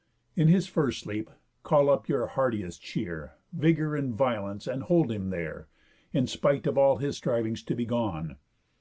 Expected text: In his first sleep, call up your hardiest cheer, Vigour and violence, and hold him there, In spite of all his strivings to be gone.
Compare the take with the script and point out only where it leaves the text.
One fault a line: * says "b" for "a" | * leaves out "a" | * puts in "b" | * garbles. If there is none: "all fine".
all fine